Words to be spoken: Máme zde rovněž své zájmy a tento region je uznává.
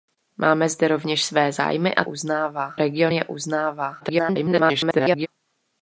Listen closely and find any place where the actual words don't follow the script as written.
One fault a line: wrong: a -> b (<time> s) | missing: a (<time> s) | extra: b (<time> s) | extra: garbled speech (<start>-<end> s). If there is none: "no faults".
wrong: tento -> uznává (2.0 s)
extra: garbled speech (4.0-5.3 s)